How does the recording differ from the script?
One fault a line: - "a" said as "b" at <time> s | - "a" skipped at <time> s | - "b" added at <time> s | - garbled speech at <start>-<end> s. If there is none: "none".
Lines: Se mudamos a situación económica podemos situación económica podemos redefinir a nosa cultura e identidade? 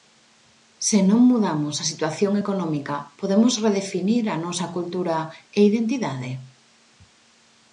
- "non" added at 1.1 s
- "situación económica podemos" skipped at 3.5 s